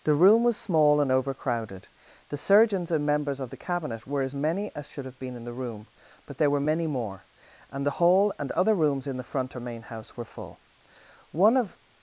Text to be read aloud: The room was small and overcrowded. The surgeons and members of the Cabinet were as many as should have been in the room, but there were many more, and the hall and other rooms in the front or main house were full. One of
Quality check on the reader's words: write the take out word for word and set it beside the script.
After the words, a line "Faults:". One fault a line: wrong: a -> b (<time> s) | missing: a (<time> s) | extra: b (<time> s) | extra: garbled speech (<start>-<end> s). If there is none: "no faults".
The room was small and overcrowded. The surgeons and members of the Cabinet were as many as should have been in the room, but there were many more, and the hall and other rooms in the front or main house were full. One of
Faults:
no faults